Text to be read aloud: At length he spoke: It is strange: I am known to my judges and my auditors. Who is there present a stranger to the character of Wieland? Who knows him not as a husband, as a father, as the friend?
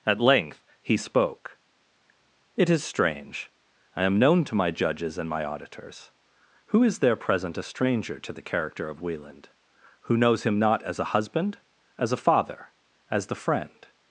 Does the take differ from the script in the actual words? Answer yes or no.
no